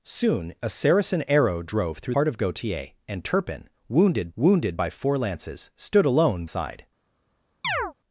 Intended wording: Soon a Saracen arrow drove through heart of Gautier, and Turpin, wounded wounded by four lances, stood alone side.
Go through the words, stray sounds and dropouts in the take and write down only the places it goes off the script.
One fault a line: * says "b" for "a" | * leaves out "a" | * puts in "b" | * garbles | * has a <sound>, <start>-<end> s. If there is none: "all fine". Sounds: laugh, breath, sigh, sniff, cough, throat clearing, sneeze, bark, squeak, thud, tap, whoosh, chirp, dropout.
* has a chirp, 7.6-7.9 s